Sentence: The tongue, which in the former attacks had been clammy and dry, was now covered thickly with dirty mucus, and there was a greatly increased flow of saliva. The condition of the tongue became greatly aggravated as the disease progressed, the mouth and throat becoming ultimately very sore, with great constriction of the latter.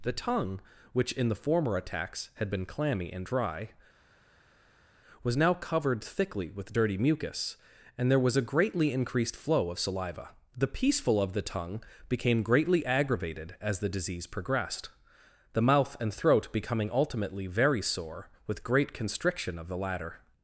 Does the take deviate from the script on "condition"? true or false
true